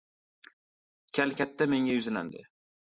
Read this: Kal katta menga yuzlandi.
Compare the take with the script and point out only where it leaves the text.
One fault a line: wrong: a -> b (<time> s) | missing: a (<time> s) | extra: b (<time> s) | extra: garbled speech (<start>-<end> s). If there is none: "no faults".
no faults